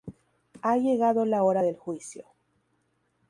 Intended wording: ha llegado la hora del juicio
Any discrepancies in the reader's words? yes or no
no